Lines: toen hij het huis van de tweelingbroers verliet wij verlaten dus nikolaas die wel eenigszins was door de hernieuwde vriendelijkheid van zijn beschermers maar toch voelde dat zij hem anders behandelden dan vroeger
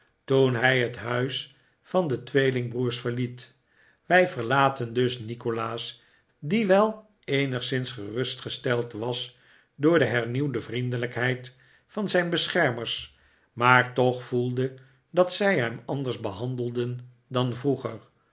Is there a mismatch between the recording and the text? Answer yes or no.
yes